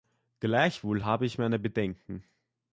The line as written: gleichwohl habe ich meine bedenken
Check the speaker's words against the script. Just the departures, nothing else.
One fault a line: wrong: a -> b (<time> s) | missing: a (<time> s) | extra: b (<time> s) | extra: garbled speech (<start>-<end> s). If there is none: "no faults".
no faults